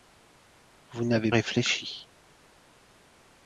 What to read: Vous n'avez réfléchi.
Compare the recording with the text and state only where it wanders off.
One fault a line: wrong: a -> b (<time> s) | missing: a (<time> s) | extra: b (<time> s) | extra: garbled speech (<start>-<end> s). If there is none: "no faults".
no faults